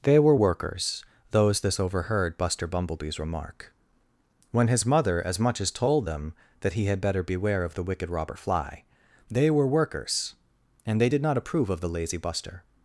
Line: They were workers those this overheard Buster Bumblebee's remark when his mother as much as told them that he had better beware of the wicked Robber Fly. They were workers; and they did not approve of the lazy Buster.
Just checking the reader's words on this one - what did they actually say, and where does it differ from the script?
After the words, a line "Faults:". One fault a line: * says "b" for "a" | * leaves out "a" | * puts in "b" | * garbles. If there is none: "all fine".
They were workers those this overheard Buster Bumblebee's remark when his mother as much as told them that he had better beware of the wicked Robber Fly. They were workers; and they did not approve of the lazy Buster.
Faults:
all fine